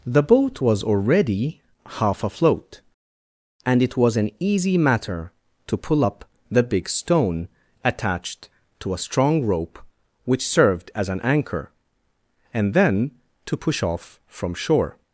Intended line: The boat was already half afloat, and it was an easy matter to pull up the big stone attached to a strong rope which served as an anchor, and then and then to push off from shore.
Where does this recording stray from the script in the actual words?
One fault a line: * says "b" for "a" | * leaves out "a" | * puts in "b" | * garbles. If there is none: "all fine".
* leaves out "and then"